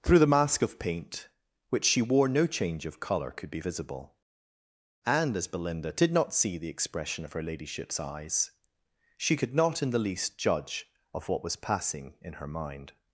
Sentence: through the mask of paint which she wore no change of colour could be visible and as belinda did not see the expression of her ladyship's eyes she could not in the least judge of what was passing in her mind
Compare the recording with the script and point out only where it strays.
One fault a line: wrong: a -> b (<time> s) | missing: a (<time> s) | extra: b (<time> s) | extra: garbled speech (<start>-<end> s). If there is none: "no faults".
no faults